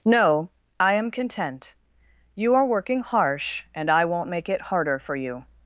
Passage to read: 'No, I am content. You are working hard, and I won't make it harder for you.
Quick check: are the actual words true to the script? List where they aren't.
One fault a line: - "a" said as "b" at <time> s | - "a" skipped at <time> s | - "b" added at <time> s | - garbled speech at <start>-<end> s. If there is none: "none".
- "hard" said as "harsh" at 3.0 s